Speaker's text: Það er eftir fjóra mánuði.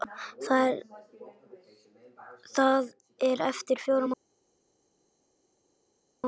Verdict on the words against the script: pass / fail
pass